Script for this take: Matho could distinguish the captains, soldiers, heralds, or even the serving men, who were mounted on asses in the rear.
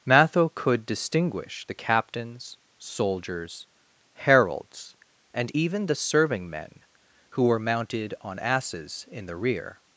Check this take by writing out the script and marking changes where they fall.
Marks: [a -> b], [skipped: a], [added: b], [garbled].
Matho could distinguish the captains, soldiers, heralds, [or -> and] even the serving men, who were mounted on asses in the rear.